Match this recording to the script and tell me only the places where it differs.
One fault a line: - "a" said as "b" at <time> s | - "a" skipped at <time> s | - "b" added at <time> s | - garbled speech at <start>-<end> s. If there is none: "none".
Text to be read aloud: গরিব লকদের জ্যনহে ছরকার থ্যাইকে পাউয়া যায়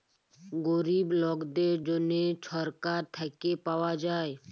none